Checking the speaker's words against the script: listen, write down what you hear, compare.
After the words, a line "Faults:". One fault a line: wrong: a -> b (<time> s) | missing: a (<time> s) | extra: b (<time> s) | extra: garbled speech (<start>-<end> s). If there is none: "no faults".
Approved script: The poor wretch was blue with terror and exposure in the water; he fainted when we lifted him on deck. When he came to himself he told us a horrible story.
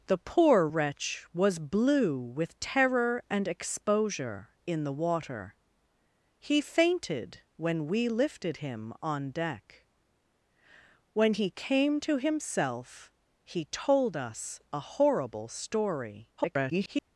The poor wretch was blue with terror and exposure in the water; he fainted when we lifted him on deck. When he came to himself he told us a horrible story. [garbled]
Faults:
extra: garbled speech (16.4-17.1 s)